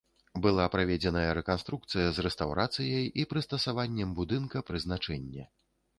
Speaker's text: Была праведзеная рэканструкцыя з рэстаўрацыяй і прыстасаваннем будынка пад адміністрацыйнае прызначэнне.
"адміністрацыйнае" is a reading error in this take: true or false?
true